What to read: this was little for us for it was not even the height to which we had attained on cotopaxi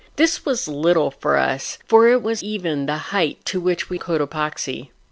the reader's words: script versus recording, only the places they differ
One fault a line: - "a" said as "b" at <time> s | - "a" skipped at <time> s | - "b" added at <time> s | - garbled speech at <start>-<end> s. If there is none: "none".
- "not" skipped at 2.4 s
- "had attained on" skipped at 4.0 s